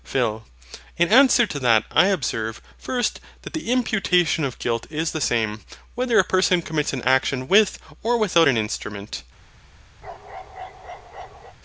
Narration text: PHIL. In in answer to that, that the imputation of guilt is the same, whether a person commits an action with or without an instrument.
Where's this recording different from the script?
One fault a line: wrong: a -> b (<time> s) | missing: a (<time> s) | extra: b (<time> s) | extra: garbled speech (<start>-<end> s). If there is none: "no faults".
missing: in (1.1 s)
extra: I observe first (1.9 s)